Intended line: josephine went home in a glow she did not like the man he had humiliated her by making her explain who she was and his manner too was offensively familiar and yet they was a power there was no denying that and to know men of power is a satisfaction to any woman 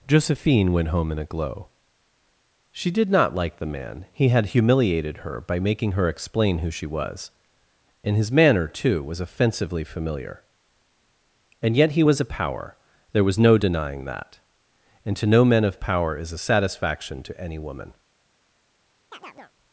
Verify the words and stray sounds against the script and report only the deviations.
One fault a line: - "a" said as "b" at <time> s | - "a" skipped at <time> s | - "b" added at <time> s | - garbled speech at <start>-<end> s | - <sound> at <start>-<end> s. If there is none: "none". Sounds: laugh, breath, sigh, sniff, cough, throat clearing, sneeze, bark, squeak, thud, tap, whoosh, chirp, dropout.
- "they" said as "he" at 11.9 s
- chirp at 19.1-19.5 s